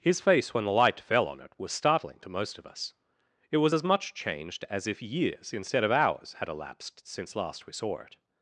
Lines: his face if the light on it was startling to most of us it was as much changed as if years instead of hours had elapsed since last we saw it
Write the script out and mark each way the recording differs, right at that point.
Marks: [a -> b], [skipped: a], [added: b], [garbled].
his face [if -> when] the light [added: fell] on it was startling to most of us it was as much changed as if years instead of hours had elapsed since last we saw it